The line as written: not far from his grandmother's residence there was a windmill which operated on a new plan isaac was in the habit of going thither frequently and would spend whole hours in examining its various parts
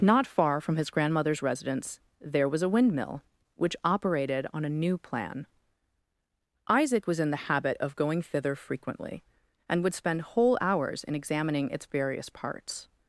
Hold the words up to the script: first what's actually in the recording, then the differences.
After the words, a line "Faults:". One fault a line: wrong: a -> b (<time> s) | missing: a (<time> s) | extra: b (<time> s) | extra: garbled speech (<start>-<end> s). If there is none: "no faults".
not far from his grandmother's residence there was a windmill which operated on a new plan isaac was in the habit of going thither frequently and would spend whole hours in examining its various parts
Faults:
no faults